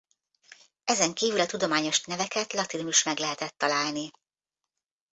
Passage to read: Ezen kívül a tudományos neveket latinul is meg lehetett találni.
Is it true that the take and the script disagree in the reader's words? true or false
false